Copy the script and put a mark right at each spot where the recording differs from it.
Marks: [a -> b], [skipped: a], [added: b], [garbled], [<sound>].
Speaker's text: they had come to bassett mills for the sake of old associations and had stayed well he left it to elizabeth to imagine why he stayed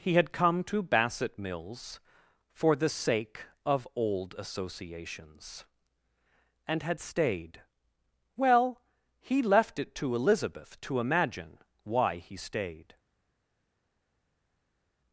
[they -> he] had come to bassett mills for the sake of old associations and had stayed well he left it to elizabeth to imagine why he stayed